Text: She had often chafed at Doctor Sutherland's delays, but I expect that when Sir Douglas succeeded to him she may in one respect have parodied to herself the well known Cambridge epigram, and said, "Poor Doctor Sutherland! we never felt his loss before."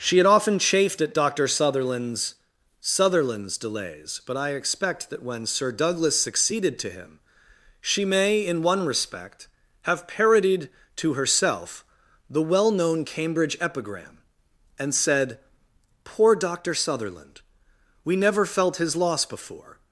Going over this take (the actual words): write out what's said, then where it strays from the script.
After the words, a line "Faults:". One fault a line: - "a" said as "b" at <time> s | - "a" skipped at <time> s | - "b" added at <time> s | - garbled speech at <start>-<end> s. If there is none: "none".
She had often chafed at Doctor Sutherland's Sutherland's delays, but I expect that when Sir Douglas succeeded to him she may in one respect have parodied to herself the well known Cambridge epigram, and said, "Poor Doctor Sutherland! we never felt his loss before."
Faults:
- "Sutherland's" added at 2.8 s